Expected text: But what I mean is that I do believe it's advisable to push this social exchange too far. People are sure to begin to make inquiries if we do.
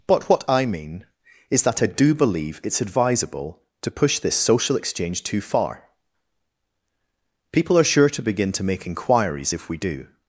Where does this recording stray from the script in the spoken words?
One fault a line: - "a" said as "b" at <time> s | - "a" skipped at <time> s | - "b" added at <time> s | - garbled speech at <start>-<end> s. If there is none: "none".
none